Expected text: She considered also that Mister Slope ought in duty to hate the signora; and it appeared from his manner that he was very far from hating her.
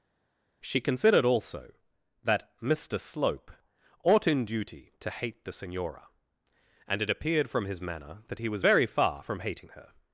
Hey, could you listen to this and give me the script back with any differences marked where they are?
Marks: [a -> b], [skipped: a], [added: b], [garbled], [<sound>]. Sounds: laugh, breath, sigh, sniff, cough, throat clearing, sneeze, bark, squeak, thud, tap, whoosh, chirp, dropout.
She considered also that Mister Slope ought in duty to hate the signora; and it appeared from his manner that he was very far from hating her.